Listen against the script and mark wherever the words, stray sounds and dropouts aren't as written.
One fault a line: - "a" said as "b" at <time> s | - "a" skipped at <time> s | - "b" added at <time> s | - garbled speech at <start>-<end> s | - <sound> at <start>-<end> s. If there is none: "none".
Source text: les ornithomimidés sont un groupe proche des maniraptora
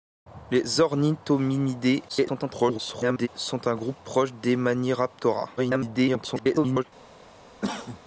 - garbled speech at 2.1-3.3 s
- garbled speech at 5.6-6.8 s
- cough at 7.6-8.0 s